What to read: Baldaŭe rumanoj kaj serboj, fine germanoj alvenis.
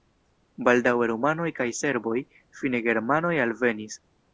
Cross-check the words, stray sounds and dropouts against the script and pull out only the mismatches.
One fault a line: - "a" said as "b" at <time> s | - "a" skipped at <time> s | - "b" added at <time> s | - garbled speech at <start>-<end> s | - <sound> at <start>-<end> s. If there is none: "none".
none